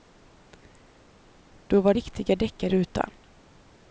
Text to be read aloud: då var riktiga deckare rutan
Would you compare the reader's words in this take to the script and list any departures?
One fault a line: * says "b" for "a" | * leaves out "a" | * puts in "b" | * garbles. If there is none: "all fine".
all fine